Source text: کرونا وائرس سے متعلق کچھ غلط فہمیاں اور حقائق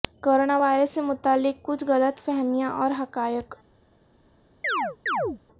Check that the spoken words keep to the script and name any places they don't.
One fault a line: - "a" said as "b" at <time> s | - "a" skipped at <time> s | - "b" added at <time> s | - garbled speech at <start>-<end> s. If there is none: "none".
none